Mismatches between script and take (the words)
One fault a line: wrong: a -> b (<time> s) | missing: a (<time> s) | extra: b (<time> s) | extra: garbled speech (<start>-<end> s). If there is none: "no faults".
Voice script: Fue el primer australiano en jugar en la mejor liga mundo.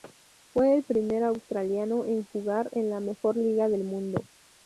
extra: del (3.7 s)